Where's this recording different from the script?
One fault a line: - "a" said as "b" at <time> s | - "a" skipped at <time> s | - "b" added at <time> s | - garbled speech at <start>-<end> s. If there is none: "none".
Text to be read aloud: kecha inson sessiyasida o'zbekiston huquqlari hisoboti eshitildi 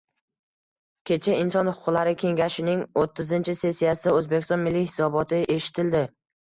- "huquqlari kengashining o'ttizinchi" added at 1.7 s
- "huquqlari" said as "milliy" at 4.7 s